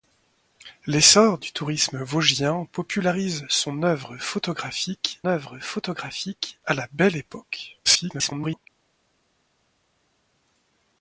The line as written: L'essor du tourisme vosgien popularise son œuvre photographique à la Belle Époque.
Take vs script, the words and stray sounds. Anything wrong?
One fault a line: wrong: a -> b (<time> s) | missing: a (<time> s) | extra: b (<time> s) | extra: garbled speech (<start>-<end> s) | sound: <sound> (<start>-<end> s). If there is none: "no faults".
extra: œuvre photographique (5.3 s)
extra: garbled speech (7.8-8.7 s)